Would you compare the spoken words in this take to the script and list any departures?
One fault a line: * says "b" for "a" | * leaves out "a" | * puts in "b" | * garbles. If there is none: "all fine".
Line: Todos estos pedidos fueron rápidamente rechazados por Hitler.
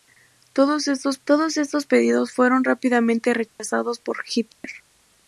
* puts in "todos estos"